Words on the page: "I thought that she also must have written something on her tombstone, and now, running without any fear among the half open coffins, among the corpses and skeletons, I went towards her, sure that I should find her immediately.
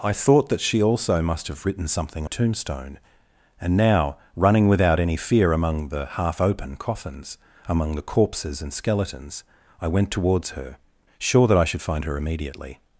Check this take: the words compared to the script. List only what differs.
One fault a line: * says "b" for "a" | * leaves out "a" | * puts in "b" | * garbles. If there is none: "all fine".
* leaves out "on her"